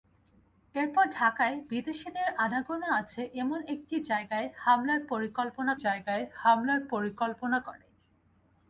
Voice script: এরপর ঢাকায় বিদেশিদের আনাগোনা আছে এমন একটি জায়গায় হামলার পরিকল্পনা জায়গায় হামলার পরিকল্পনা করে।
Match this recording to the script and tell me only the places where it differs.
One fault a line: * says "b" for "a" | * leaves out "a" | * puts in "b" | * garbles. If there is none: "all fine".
all fine